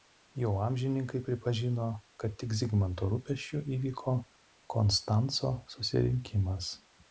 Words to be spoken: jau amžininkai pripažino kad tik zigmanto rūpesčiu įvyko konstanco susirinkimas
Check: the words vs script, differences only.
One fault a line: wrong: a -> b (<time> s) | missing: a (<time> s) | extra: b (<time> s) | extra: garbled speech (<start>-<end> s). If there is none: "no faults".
no faults